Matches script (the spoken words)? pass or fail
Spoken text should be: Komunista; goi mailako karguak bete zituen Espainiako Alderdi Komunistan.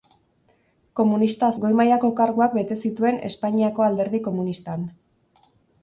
pass